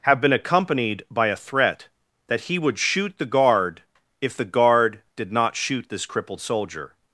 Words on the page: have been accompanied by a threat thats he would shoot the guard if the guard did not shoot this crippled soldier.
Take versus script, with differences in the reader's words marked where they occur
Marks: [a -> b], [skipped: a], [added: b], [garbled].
have been accompanied by a threat [thats -> that] he would shoot the guard if the guard did not shoot this crippled soldier.